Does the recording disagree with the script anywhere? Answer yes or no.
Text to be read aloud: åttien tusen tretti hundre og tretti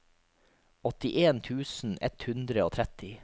yes